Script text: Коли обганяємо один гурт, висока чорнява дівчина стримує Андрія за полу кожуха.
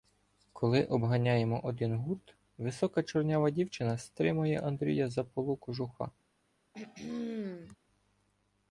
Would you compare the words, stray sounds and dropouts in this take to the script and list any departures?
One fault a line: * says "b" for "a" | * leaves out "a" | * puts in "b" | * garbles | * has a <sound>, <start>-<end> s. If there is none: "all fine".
* has a throat clearing, 6.7-7.8 s